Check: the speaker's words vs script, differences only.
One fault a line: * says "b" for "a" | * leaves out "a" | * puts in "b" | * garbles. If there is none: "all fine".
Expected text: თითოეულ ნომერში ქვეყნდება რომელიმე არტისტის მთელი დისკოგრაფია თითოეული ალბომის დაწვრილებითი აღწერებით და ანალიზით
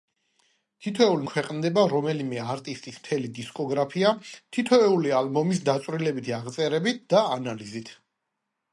* leaves out "ნომერში"